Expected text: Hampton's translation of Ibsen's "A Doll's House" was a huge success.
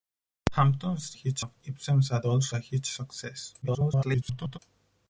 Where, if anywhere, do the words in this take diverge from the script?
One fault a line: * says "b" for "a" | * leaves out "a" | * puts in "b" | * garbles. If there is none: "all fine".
* says "huge" for "translation"
* leaves out "House was"
* garbles